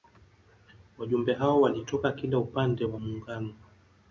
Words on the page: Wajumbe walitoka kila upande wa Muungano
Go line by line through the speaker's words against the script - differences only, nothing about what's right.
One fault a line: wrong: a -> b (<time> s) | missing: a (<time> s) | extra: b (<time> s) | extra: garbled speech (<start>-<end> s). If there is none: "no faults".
extra: hao (1.3 s)